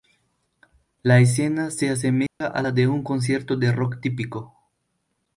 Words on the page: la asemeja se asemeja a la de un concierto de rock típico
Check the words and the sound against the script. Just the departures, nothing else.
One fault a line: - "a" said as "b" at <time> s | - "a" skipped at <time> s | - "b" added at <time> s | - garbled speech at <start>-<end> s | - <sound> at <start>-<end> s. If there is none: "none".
- "asemeja" said as "escena" at 1.2 s
- dropout at 2.3-2.4 s